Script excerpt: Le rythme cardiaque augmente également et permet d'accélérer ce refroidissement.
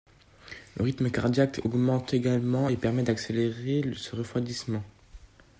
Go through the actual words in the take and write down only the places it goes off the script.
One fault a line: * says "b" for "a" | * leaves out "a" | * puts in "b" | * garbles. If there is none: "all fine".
all fine